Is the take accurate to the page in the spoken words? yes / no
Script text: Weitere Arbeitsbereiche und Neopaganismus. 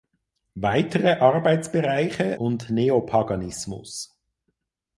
yes